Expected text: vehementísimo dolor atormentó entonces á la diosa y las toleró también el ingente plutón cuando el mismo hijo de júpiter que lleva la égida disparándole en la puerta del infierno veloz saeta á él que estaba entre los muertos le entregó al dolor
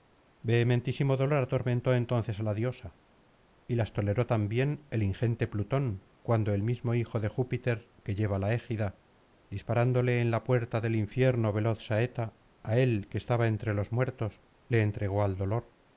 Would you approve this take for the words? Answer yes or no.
yes